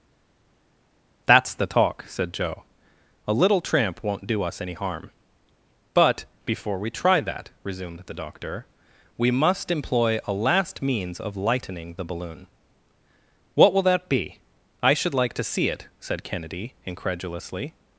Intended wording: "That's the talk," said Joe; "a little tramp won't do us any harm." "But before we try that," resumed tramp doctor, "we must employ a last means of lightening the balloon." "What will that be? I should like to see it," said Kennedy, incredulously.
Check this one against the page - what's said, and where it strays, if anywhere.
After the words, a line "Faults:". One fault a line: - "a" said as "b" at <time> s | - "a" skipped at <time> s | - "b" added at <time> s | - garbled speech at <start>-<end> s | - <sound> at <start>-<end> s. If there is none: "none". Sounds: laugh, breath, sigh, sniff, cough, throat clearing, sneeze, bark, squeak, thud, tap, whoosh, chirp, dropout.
"That's the talk," said Joe; "a little tramp won't do us any harm." "But before we try that," resumed the doctor, "we must employ a last means of lightening the balloon." "What will that be? I should like to see it," said Kennedy, incredulously.
Faults:
- "tramp" said as "the" at 8.0 s